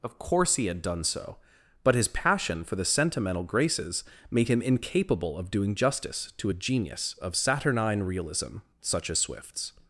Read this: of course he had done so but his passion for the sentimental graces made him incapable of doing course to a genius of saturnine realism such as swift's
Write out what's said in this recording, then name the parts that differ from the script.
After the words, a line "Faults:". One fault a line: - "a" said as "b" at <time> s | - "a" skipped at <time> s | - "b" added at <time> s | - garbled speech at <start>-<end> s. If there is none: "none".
of course he had done so but his passion for the sentimental graces made him incapable of doing justice to a genius of saturnine realism such as swift's
Faults:
- "course" said as "justice" at 5.8 s